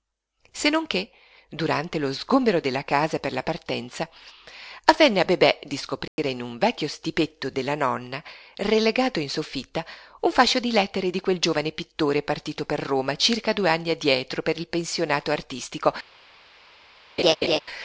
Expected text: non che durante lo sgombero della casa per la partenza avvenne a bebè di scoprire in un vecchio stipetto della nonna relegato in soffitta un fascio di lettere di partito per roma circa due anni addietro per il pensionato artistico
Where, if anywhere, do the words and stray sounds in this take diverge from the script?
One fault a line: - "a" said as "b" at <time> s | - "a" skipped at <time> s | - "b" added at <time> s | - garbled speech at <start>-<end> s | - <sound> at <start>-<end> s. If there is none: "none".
- dropout at 6.1-6.2 s
- "quel giovane pittore" added at 11.2 s
- laugh at 17.2-17.6 s